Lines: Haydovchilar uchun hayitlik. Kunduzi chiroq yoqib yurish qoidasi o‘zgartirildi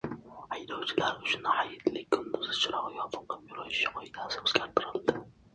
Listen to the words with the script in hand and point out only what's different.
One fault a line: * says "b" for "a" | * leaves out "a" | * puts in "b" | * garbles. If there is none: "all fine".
all fine